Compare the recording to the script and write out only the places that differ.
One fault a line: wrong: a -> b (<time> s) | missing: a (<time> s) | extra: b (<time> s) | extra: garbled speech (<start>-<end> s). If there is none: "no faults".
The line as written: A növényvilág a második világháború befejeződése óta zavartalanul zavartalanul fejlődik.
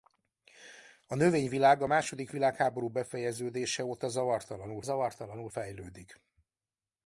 no faults